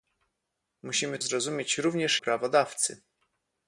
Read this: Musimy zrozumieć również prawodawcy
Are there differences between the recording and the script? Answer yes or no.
no